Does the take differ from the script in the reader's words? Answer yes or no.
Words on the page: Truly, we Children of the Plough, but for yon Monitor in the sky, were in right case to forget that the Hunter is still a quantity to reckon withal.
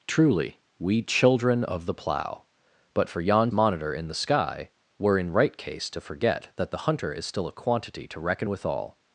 no